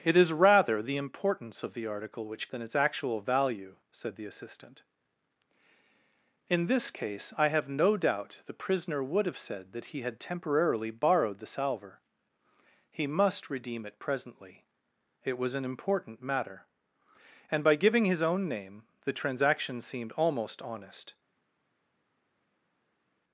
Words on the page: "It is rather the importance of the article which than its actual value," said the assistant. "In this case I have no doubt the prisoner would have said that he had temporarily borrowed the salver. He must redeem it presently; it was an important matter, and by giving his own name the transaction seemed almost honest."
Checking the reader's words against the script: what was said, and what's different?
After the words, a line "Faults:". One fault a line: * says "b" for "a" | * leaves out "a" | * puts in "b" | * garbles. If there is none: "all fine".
"It is rather the importance of the article which than its actual value," said the assistant. "In this case I have no doubt the prisoner would have said that he had temporarily borrowed the salver. He must redeem it presently; it was an important matter, and by giving his own name the transaction seemed almost honest."
Faults:
all fine